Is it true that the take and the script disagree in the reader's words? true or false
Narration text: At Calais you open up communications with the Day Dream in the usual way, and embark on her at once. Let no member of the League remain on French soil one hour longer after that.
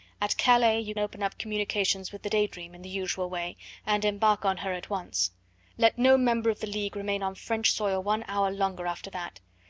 false